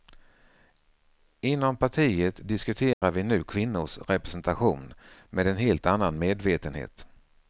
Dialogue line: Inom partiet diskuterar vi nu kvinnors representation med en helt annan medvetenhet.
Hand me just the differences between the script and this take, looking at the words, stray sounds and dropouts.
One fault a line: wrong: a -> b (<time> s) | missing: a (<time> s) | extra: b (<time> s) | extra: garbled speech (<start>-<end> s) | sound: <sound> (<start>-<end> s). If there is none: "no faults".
sound: dropout (2.9-3.0 s)